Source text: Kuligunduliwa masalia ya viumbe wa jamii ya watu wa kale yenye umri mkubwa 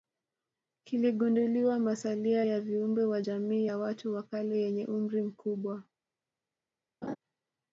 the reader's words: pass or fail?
pass